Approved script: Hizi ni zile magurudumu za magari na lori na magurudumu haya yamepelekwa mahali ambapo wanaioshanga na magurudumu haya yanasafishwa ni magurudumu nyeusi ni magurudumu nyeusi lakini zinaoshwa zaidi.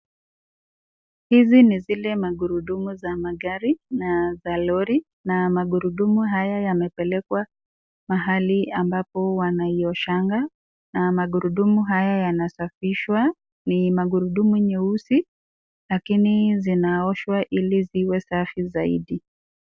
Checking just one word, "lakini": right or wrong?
wrong